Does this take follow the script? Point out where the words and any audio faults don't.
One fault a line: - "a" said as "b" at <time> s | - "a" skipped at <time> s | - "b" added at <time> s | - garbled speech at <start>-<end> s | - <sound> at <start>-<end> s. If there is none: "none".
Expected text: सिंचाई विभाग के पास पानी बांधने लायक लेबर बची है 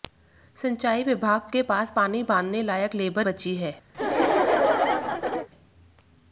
- laugh at 3.9-5.5 s